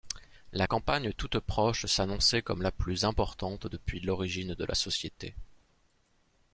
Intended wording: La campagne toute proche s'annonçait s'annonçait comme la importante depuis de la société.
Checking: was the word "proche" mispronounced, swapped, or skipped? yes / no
no